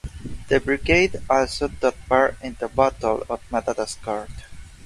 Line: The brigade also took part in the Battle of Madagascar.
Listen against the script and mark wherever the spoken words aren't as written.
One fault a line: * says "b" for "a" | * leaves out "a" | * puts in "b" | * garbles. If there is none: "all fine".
all fine